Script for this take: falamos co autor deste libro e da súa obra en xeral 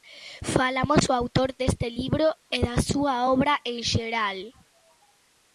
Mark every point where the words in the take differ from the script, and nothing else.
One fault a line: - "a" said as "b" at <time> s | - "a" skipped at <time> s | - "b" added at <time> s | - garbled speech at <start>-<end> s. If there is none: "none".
none